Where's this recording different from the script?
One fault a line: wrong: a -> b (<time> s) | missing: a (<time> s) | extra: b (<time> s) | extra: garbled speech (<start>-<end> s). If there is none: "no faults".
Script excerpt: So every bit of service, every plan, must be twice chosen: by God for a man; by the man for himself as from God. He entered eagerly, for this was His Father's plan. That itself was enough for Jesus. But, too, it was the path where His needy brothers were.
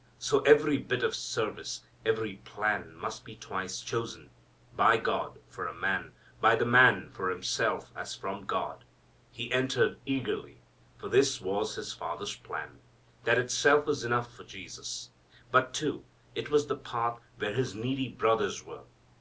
no faults